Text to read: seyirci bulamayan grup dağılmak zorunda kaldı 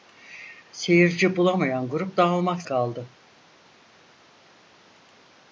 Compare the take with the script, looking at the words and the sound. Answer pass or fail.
fail